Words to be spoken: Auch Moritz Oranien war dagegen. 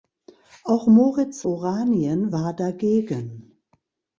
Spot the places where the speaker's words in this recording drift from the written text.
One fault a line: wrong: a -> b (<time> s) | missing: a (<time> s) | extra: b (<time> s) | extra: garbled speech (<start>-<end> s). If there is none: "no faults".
no faults